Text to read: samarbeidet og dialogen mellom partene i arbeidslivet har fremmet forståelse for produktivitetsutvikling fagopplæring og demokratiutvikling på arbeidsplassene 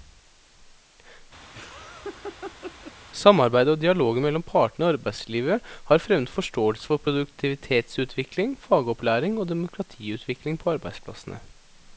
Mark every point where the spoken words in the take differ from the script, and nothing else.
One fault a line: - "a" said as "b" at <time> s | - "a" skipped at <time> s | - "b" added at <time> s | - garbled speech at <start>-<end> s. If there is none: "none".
none